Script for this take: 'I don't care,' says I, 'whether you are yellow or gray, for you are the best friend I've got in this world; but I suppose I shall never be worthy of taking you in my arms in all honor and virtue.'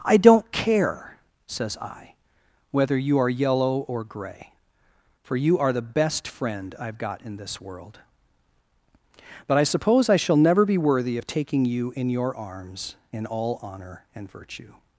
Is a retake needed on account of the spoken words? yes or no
yes